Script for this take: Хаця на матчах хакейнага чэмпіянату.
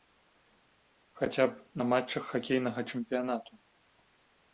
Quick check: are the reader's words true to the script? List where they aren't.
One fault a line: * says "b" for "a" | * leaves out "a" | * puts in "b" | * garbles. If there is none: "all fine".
* puts in "б"